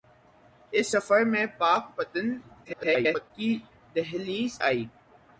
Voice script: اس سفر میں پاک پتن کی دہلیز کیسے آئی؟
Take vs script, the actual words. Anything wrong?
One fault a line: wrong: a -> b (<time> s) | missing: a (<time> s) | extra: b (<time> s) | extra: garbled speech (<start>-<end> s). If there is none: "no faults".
extra: garbled speech (2.6-3.3 s)
missing: کیسے (4.6 s)